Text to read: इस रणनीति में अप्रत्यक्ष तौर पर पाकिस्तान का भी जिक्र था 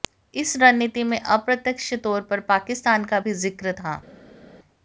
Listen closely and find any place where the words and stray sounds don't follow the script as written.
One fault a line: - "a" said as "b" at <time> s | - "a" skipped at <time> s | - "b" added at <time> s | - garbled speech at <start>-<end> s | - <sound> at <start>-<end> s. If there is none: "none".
none